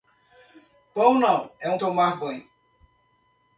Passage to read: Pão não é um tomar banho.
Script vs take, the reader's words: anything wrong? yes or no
no